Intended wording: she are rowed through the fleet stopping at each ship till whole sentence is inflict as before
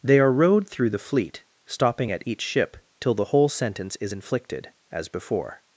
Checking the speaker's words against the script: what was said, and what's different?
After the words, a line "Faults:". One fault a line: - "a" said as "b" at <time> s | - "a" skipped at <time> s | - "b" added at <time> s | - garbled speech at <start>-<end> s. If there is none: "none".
they are rowed through the fleet stopping at each ship till the whole sentence is inflicted as before
Faults:
- "she" said as "they" at 0.0 s
- "the" added at 3.1 s
- "inflict" said as "inflicted" at 4.1 s